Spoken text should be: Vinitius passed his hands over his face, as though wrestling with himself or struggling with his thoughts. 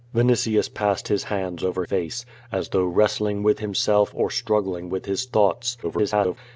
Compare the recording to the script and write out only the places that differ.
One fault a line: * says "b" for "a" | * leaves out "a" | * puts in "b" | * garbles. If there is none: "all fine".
* leaves out "his"
* garbles